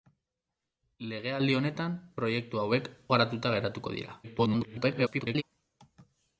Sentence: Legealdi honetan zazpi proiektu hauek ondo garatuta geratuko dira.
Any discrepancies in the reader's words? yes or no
yes